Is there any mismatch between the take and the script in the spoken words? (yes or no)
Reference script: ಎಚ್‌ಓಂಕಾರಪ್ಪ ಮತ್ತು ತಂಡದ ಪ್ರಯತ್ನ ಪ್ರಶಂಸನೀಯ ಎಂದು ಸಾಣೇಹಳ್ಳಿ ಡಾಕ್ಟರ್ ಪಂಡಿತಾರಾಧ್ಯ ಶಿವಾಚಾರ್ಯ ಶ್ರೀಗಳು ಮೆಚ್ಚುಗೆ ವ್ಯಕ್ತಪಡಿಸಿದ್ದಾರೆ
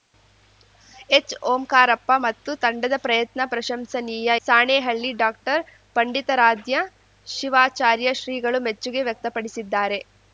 yes